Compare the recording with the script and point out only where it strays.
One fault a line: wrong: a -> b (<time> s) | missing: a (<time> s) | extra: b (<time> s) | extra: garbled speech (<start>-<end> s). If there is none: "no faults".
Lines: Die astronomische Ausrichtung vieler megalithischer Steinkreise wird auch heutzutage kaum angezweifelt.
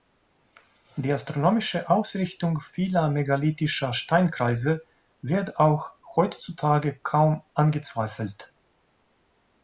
no faults